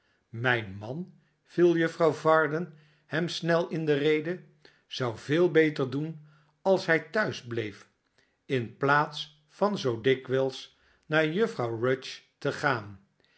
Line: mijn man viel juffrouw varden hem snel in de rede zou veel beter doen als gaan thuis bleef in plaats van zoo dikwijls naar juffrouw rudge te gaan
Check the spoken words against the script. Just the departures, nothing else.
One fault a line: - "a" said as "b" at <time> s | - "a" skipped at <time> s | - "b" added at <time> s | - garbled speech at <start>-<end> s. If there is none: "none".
- "gaan" said as "hij" at 6.9 s